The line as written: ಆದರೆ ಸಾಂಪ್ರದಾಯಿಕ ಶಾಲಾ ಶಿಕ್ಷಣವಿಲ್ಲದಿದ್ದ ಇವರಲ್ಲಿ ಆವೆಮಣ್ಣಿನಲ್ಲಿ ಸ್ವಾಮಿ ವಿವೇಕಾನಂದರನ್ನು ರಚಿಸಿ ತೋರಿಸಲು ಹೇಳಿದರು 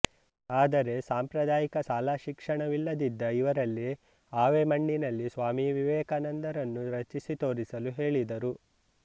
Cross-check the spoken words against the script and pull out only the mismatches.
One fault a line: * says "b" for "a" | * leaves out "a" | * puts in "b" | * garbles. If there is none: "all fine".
all fine